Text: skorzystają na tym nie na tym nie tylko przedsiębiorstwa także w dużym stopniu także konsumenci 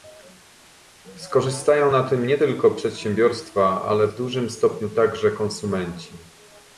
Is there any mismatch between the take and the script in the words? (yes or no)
yes